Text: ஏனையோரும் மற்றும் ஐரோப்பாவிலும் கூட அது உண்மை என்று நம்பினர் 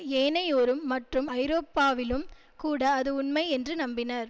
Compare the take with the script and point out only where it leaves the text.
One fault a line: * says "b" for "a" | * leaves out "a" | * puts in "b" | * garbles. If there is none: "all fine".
all fine